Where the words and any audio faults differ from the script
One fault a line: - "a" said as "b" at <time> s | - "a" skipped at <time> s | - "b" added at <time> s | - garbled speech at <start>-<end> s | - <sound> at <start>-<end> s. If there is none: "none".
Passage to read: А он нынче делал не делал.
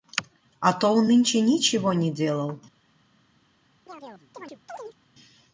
- "то" added at 0.7 s
- "делал" said as "ничего" at 1.4 s
- chirp at 3.9-5.0 s